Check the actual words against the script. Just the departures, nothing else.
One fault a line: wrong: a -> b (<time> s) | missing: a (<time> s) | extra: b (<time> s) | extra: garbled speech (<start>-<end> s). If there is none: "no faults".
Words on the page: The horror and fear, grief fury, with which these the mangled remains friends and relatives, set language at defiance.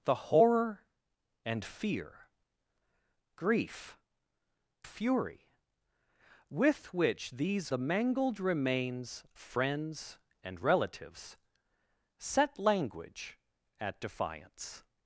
no faults